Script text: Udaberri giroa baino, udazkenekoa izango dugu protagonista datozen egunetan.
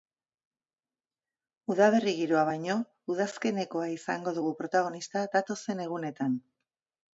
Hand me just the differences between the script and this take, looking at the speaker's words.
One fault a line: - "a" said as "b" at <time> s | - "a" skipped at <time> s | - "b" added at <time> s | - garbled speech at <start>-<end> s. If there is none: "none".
none